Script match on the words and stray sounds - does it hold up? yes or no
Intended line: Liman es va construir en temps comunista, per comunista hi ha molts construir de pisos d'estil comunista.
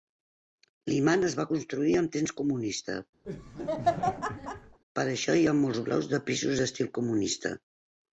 no